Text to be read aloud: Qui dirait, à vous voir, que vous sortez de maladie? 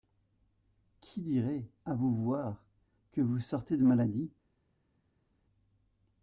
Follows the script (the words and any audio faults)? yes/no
yes